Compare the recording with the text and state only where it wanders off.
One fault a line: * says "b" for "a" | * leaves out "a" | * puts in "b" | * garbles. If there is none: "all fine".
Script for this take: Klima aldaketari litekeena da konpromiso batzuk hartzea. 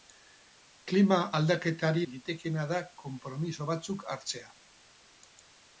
all fine